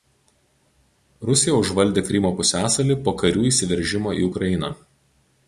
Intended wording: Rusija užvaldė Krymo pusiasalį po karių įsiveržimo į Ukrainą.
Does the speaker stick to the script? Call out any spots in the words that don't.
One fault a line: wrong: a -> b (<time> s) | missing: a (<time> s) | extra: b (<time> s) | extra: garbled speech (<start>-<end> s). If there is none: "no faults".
no faults